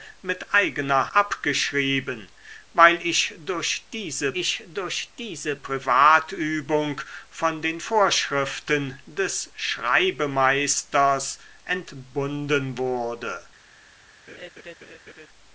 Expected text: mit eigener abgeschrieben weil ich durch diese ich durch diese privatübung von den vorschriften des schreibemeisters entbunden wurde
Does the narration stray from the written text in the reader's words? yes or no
no